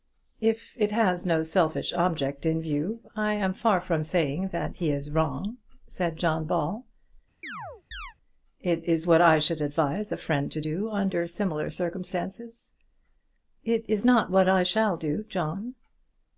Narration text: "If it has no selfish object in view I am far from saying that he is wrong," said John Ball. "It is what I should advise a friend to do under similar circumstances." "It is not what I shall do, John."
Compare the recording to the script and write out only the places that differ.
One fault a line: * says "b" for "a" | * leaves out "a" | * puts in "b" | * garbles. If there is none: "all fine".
all fine